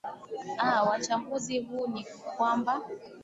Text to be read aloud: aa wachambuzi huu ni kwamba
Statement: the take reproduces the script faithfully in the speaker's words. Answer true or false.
true